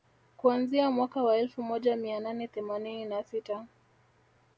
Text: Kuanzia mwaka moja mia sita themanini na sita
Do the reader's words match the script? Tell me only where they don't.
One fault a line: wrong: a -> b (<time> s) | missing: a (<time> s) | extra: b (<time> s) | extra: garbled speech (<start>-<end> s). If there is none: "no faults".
extra: wa elfu (1.2 s)
wrong: sita -> nane (2.2 s)